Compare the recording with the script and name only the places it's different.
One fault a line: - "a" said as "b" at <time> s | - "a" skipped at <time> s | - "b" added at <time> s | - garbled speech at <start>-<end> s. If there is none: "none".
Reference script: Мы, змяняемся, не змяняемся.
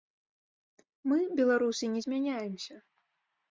- "змяняемся" said as "беларусы" at 1.4 s